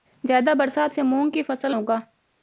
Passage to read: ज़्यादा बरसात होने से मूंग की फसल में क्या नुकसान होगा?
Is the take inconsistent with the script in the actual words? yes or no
yes